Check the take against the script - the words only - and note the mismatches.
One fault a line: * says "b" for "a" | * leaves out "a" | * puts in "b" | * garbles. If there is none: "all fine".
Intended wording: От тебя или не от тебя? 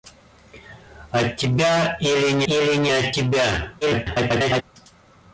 * puts in "или не"
* garbles